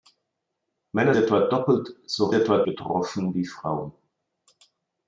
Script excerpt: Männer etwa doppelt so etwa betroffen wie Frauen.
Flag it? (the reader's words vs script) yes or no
no